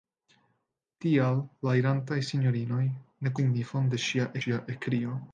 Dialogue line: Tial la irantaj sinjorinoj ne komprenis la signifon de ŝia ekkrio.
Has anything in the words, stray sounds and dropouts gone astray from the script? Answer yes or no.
yes